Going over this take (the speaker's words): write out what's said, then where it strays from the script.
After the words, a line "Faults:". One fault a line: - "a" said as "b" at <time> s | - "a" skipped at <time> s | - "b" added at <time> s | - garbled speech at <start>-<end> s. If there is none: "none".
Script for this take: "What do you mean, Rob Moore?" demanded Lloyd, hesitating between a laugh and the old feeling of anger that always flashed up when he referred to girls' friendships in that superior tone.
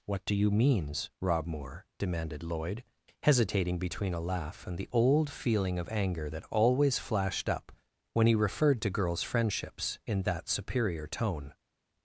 "What do you means, Rob Moore?" demanded Lloyd, hesitating between a laugh and the old feeling of anger that always flashed up when he referred to girls' friendships in that superior tone.
Faults:
- "mean" said as "means" at 0.5 s